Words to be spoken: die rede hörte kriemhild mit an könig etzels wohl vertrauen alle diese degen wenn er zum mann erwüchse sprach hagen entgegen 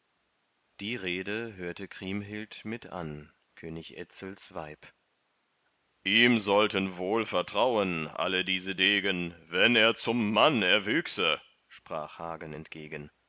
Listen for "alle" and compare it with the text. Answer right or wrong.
right